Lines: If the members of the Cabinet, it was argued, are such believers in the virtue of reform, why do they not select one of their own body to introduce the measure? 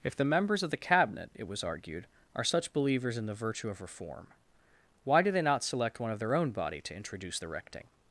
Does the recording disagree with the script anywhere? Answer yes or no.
yes